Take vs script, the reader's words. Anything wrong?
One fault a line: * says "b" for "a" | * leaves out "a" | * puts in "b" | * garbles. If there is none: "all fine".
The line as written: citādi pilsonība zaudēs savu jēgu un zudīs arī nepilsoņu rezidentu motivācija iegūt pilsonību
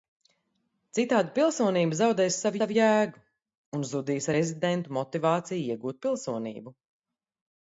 * puts in "savu"
* leaves out "arī nepilsoņu"